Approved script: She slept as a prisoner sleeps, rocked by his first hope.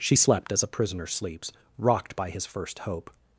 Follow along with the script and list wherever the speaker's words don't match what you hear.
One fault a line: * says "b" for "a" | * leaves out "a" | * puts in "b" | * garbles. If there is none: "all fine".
all fine